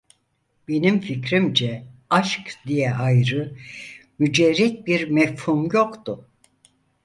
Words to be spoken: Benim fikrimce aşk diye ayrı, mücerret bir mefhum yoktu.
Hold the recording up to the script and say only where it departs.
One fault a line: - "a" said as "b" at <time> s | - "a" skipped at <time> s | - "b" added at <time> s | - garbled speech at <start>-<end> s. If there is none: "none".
none